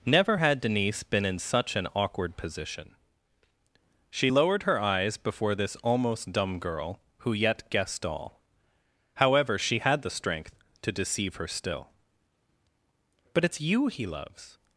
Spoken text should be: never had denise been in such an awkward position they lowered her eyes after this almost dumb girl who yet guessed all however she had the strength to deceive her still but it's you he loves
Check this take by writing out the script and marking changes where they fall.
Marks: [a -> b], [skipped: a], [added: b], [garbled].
never had denise been in such an awkward position [they -> she] lowered her eyes [after -> before] this almost dumb girl who yet guessed all however she had the strength to deceive her still but it's you he loves